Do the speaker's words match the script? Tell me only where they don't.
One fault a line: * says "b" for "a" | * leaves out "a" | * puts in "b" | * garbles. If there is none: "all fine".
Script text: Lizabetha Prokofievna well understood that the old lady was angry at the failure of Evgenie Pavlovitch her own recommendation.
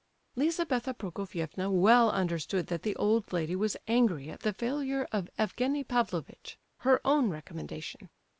all fine